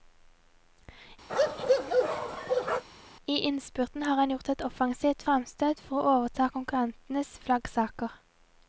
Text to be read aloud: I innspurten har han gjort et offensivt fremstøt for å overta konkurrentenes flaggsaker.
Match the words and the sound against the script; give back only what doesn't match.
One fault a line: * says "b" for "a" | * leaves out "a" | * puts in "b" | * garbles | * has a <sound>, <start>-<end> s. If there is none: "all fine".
* has a bark, 1.3-2.8 s